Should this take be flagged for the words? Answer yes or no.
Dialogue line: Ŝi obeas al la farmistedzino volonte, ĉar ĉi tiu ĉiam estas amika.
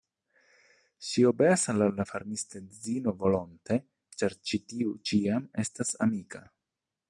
no